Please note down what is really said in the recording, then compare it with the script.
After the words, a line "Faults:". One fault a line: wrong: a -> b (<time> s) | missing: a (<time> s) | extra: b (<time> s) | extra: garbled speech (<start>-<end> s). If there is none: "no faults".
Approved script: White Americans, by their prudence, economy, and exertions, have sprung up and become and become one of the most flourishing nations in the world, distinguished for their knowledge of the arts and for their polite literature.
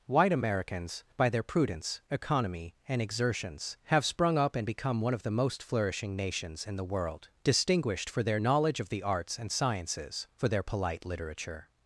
White Americans, by their prudence, economy, and exertions, have sprung up and become one of the most flourishing nations in the world, distinguished for their knowledge of the arts and sciences, for their polite literature.
Faults:
missing: and become (5.0 s)
extra: sciences (9.5 s)